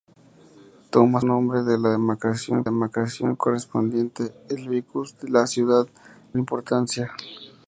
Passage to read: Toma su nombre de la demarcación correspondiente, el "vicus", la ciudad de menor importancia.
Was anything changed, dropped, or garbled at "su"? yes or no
yes